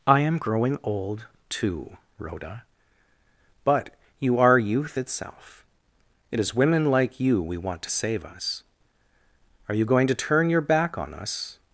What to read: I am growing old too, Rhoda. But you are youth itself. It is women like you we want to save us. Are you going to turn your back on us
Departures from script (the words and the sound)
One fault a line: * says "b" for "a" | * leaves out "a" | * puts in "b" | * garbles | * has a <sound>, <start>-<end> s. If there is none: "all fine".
all fine